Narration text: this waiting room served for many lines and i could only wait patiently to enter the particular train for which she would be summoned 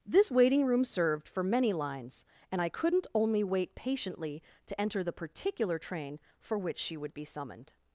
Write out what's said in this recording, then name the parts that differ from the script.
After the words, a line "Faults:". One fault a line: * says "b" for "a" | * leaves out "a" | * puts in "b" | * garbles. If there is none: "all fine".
this waiting room served for many lines and i couldn't only wait patiently to enter the particular train for which she would be summoned
Faults:
* says "couldn't" for "could"